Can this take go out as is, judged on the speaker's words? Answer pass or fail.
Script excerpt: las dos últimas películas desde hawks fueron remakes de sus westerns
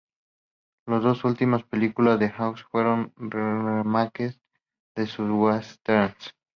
fail